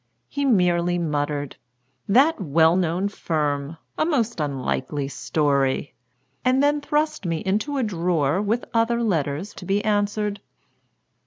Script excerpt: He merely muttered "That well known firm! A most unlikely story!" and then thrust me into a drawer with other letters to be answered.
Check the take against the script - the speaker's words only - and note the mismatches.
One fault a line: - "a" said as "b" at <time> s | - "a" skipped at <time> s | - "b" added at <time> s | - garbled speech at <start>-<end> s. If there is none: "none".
none